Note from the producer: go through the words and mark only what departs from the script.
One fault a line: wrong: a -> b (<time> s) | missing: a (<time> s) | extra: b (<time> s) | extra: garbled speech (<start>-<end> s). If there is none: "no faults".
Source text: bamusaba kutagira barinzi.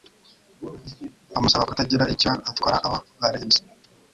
extra: icyo atwara abo (2.1 s)